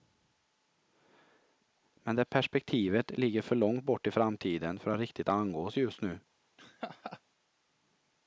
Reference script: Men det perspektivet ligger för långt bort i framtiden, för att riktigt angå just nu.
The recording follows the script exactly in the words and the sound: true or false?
false